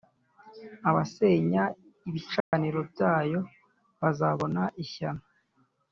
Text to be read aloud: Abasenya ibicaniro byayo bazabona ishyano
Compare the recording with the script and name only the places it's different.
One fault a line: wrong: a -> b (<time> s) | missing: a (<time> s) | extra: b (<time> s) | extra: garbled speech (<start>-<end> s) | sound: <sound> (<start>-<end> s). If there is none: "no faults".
sound: dropout (2.4-2.5 s)